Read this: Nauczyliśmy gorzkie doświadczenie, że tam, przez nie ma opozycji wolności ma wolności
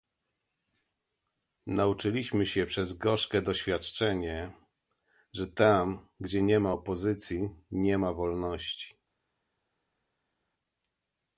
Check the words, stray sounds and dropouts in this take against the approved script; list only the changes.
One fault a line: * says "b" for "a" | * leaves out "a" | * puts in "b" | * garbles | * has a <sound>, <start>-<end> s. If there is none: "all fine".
* puts in "się przez"
* says "gdzie" for "przez"
* says "nie" for "wolności"